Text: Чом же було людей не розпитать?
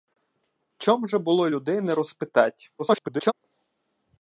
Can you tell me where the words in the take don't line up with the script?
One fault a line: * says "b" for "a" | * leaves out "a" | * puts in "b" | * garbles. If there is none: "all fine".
* garbles